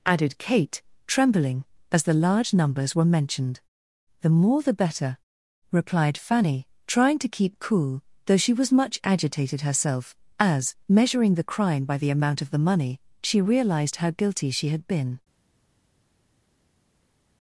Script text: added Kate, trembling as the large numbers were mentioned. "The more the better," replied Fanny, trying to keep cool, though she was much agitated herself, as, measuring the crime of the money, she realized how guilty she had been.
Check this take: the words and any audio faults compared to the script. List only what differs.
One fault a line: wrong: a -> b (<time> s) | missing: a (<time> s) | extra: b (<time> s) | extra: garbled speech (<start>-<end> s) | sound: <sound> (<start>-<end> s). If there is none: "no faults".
extra: by the amount (11.9 s)